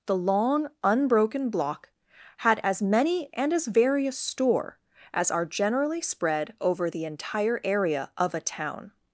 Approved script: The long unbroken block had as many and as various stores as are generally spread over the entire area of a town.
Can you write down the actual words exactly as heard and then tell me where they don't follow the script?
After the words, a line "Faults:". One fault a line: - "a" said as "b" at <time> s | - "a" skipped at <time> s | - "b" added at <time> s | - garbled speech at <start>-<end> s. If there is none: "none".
The long unbroken block had as many and as various store as are generally spread over the entire area of a town.
Faults:
- "stores" said as "store" at 4.2 s